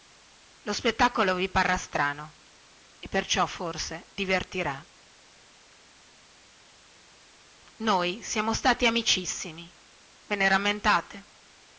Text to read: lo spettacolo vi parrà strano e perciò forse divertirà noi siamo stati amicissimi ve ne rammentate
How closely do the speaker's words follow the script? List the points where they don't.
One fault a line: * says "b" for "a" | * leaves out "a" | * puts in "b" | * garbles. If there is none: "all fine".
all fine